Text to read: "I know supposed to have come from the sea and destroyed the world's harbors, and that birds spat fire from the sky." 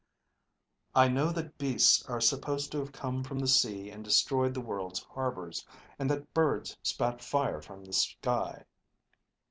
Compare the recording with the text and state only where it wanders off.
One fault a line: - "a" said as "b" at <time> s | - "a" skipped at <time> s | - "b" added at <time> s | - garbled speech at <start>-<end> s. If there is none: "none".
- "that beasts are" added at 1.3 s